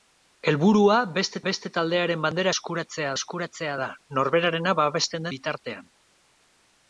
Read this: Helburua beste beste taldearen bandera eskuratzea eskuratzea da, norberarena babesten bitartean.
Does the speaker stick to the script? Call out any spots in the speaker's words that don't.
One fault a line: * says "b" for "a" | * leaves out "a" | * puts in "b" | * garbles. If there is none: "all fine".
all fine